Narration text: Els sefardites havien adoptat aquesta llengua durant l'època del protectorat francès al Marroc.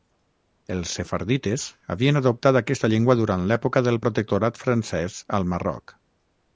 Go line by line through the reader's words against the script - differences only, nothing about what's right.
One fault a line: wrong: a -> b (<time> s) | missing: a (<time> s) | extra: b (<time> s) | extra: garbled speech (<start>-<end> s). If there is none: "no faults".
no faults